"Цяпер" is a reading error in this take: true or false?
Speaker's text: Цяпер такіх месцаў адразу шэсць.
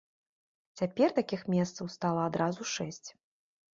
false